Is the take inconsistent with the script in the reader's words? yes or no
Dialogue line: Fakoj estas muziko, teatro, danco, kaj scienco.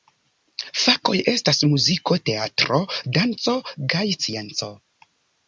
no